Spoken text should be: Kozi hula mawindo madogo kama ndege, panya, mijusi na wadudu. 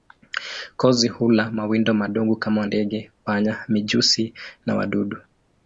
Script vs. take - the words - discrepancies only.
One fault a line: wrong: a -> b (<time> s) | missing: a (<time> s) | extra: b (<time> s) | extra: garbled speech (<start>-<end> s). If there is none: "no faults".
no faults